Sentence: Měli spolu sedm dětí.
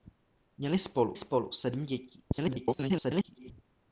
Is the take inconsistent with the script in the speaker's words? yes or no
yes